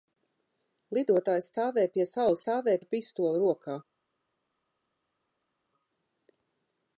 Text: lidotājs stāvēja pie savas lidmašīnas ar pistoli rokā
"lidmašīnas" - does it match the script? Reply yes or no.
no